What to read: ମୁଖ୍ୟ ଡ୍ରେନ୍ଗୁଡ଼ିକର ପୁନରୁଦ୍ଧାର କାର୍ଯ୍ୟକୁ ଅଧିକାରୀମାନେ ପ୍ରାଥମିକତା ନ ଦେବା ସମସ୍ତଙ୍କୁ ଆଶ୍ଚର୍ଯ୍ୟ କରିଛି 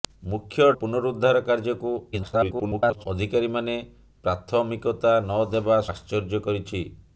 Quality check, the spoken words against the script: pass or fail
fail